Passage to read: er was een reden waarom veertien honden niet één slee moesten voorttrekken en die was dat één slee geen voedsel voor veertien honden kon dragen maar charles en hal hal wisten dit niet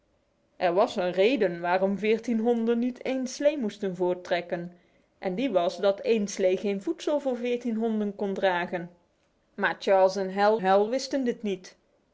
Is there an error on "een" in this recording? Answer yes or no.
no